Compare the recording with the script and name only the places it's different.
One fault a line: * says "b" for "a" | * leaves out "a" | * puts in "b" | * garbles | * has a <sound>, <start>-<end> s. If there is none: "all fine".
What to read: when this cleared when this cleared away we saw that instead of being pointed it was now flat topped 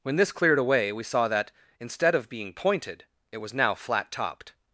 * leaves out "when this cleared"